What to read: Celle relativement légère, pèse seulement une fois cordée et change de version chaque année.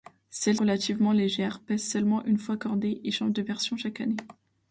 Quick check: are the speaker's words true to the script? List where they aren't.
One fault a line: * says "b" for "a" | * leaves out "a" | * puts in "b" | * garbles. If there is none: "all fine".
all fine